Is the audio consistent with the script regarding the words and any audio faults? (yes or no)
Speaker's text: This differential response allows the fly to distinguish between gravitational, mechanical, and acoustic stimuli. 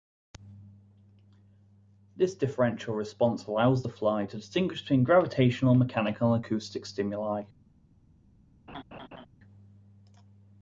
no